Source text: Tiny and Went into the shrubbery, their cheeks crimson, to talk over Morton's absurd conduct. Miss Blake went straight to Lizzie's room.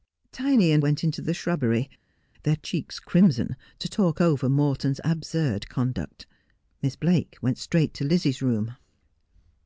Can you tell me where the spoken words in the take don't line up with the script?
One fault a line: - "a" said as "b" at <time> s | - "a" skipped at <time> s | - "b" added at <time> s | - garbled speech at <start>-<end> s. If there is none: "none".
none